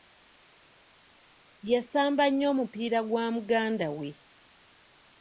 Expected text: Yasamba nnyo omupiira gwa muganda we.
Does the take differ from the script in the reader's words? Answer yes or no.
no